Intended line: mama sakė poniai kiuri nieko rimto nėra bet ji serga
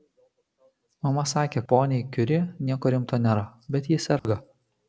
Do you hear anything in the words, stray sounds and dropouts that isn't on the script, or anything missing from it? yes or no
yes